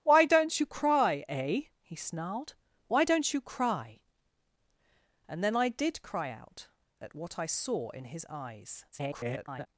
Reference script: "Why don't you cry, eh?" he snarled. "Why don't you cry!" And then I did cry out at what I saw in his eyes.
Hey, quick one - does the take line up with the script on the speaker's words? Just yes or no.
no